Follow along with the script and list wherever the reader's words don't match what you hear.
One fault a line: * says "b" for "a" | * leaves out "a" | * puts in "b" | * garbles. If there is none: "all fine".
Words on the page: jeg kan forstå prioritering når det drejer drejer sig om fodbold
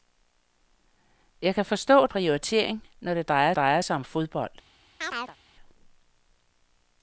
all fine